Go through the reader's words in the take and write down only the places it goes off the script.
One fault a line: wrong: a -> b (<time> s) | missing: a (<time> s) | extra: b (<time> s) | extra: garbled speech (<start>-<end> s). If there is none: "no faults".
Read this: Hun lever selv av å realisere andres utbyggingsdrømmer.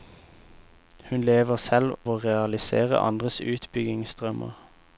missing: av (1.9 s)